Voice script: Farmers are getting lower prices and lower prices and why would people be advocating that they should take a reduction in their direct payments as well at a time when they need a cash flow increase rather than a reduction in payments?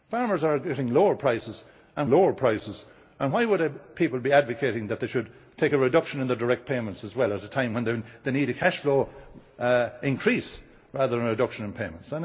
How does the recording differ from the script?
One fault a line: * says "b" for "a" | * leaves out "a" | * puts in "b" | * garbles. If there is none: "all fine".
all fine